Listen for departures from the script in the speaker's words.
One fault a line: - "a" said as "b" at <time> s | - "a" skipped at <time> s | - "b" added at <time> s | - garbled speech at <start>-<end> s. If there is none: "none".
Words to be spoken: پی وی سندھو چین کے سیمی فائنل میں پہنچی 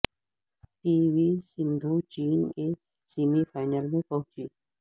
none